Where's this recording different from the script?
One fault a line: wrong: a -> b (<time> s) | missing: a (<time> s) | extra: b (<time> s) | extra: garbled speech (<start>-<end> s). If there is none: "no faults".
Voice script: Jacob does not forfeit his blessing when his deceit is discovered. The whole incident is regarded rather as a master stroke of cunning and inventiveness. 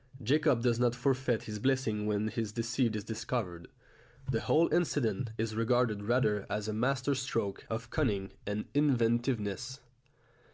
no faults